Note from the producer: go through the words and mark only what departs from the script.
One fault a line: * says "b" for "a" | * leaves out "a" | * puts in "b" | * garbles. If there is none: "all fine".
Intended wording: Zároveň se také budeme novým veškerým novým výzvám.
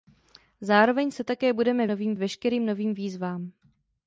all fine